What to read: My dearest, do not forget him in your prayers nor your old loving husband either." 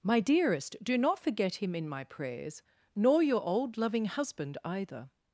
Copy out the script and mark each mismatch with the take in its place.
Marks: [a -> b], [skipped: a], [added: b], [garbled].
My dearest, do not forget him in [your -> my] prayers nor your old loving husband either."